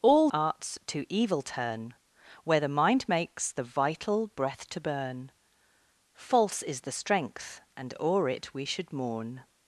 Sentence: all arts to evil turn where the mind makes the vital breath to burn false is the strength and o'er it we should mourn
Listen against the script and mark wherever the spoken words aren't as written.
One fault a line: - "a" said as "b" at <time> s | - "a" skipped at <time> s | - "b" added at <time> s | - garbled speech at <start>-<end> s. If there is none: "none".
none